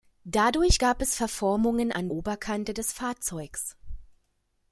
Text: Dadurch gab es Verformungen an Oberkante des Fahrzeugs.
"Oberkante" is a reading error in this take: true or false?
false